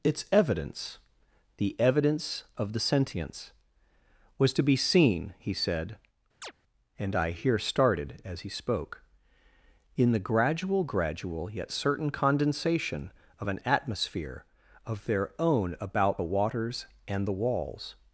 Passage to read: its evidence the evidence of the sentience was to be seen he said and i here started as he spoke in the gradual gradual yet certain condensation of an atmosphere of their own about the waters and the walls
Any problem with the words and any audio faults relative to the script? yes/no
yes